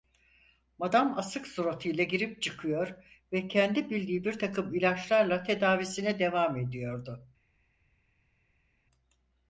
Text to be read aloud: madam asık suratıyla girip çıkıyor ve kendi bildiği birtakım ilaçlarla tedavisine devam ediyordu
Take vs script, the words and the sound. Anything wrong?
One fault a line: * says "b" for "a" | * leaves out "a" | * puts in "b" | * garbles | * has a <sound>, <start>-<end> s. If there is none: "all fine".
all fine